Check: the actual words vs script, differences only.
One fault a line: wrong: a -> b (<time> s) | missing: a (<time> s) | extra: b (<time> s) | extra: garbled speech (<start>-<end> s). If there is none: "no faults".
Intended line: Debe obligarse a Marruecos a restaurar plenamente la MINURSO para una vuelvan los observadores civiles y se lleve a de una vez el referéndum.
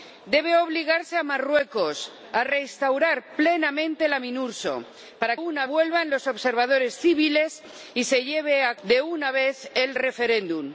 no faults